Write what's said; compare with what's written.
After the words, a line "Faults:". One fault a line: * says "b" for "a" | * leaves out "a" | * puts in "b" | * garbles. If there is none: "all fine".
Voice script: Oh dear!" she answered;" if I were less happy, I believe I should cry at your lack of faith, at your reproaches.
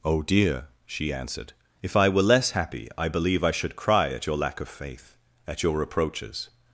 Oh dear!" she answered;" if I were less happy, I believe I should cry at your lack of faith, at your reproaches.
Faults:
all fine